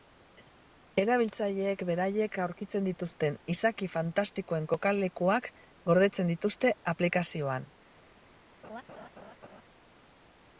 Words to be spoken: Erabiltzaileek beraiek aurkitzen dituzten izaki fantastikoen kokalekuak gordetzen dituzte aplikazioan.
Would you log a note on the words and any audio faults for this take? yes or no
yes